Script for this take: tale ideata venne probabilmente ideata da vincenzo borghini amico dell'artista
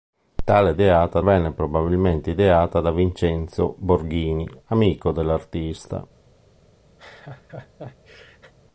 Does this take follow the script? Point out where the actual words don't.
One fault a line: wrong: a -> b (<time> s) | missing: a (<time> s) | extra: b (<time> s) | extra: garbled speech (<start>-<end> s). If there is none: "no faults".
no faults